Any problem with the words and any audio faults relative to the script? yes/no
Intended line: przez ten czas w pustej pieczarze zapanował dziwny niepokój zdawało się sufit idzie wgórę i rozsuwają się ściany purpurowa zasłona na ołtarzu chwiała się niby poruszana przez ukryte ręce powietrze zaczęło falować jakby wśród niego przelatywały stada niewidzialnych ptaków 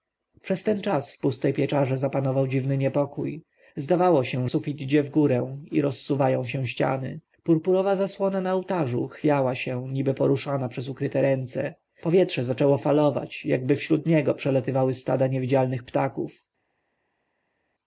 no